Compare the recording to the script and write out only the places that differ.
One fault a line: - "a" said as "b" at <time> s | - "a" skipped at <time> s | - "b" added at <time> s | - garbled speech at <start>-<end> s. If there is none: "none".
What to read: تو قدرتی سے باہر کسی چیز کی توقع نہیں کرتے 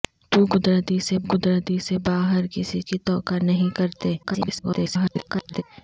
- "قدرتی سے" added at 1.2 s
- "چیز" skipped at 2.8 s
- garbled speech at 4.2-5.6 s